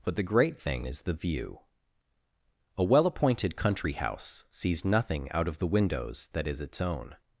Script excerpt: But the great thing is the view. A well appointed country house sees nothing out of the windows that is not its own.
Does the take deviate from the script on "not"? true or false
true